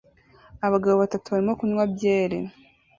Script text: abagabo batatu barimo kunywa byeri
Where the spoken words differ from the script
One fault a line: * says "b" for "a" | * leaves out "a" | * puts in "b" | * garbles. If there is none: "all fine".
all fine